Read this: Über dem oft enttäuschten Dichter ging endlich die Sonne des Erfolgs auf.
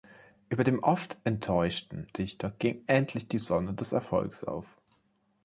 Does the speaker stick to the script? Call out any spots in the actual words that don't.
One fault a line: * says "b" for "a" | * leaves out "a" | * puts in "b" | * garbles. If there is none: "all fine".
all fine